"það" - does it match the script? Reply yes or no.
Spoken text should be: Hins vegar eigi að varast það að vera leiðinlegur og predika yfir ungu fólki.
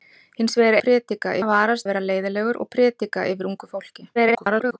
no